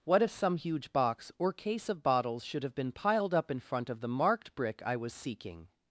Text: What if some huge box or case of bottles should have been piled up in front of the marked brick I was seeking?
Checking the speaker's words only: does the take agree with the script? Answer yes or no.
yes